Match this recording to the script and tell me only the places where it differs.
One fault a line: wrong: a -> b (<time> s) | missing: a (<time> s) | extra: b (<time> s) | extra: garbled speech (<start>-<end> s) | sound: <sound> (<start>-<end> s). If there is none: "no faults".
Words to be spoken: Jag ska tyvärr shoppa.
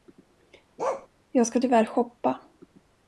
sound: bark (0.8-1.1 s)